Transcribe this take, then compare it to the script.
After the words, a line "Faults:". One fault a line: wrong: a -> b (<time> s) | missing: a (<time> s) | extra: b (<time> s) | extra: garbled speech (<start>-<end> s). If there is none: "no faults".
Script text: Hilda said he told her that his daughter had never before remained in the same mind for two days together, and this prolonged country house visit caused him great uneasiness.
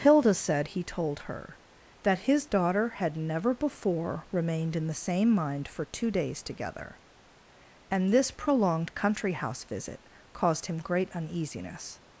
Hilda said he told her that his daughter had never before remained in the same mind for two days together, and this prolonged country house visit caused him great uneasiness.
Faults:
no faults